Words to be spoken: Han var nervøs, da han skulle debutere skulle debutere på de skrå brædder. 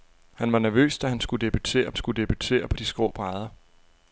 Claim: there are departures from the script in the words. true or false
false